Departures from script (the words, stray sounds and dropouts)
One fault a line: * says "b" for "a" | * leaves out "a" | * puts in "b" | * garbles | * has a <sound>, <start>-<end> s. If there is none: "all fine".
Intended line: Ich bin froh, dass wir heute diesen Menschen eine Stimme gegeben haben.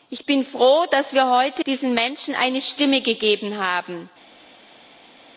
all fine